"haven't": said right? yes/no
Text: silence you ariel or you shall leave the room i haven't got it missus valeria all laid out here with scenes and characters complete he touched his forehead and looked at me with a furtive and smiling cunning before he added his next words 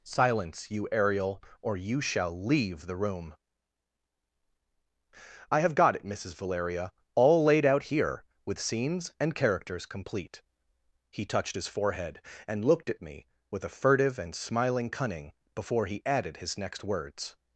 no